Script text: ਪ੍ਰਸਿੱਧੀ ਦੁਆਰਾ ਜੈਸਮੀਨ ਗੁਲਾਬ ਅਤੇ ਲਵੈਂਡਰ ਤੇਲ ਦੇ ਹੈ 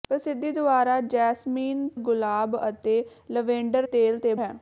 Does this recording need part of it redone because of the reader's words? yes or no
no